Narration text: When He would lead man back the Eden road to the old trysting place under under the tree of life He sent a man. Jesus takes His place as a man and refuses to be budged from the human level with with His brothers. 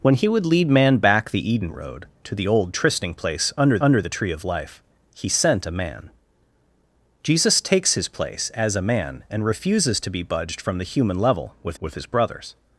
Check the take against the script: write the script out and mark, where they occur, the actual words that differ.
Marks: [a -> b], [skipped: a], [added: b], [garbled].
When He would lead man back the Eden road to the old trysting place under under the tree of life He sent a man. Jesus takes His place as a man and refuses to be budged from the human level with with His brothers.